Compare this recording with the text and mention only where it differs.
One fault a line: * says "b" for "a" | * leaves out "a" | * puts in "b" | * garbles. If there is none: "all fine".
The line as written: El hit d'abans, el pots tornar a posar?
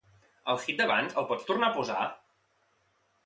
all fine